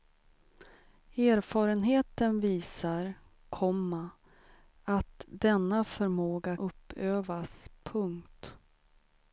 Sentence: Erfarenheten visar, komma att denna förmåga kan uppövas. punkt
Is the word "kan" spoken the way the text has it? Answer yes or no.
no